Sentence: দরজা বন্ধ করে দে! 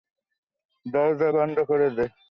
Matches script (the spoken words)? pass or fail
pass